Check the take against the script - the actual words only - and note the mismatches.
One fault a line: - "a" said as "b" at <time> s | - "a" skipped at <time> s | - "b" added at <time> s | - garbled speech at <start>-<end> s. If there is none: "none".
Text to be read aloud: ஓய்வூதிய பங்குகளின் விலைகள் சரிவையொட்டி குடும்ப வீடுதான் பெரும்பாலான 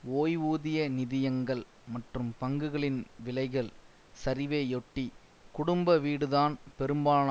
- "நிதியங்கள் மற்றும்" added at 0.9 s